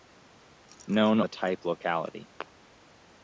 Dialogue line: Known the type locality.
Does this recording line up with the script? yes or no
yes